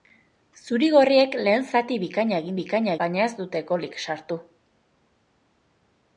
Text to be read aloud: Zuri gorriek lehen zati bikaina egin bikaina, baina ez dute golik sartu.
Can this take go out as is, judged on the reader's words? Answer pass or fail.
pass